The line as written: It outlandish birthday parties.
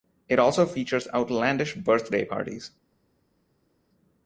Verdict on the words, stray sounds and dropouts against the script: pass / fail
fail